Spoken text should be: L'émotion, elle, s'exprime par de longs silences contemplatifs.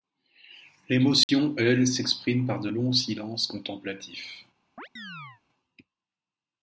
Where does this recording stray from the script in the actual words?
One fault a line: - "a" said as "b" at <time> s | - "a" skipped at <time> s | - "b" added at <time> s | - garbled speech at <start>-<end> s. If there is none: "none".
none